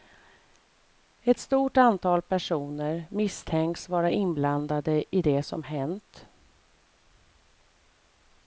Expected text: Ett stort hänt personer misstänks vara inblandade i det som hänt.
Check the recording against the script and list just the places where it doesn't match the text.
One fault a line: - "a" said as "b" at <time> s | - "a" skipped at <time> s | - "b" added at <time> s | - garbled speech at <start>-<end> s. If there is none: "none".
- "hänt" said as "antal" at 1.8 s